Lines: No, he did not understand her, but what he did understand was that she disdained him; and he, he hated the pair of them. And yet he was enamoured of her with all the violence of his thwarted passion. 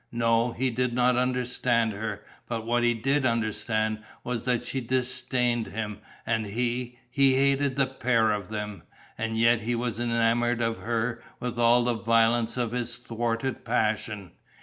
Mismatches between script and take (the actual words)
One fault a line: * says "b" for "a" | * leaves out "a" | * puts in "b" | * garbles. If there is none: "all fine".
all fine